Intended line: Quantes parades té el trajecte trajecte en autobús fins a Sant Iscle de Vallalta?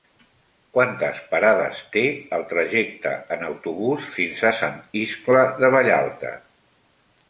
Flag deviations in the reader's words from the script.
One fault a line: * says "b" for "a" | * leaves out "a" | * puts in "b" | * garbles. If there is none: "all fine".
* leaves out "trajecte"